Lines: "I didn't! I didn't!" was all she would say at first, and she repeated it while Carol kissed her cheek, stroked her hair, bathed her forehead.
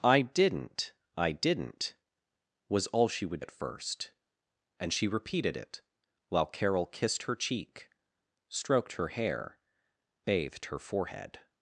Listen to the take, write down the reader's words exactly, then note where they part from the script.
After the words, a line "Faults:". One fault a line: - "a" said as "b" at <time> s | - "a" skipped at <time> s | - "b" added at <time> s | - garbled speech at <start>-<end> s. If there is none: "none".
"I didn't! I didn't!" was all she would at first, and she repeated it while Carol kissed her cheek, stroked her hair, bathed her forehead.
Faults:
- "say" skipped at 3.5 s